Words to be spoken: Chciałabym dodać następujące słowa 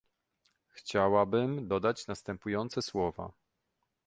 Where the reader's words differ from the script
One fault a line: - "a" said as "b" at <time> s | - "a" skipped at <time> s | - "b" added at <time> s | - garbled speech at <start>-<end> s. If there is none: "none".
none